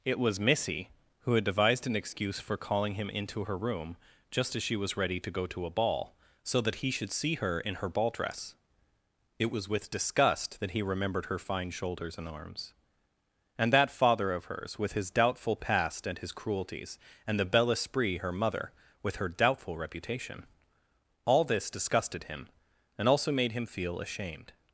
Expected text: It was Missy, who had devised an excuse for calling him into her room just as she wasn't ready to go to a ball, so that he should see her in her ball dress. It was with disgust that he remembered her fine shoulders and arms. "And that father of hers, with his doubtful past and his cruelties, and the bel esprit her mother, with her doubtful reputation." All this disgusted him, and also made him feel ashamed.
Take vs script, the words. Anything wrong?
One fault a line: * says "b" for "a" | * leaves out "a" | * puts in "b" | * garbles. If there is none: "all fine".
* says "was" for "wasn't"